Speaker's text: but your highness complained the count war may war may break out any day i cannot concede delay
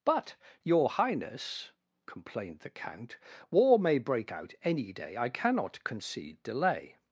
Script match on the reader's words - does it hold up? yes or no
no